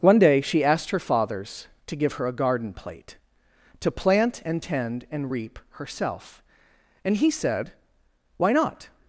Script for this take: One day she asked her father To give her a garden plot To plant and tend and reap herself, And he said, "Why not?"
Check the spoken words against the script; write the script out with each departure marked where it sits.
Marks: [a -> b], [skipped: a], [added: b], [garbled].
One day she asked her [father -> fathers] To give her a garden [plot -> plate] To plant and tend and reap herself, And he said, "Why not?"